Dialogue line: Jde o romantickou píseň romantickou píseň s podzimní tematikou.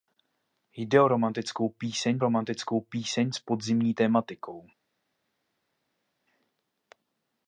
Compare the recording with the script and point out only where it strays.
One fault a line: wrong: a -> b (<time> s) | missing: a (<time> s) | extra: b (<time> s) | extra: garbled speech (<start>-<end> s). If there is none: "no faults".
no faults